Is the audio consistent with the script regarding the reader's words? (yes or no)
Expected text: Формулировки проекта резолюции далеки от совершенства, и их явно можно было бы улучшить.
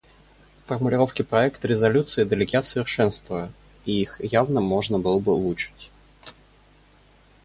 yes